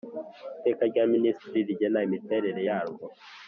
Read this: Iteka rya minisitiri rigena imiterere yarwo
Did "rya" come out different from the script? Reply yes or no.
no